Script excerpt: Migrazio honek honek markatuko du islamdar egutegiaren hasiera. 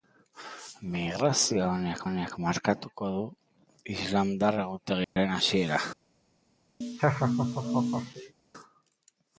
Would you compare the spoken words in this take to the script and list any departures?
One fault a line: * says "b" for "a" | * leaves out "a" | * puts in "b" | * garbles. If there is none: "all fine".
all fine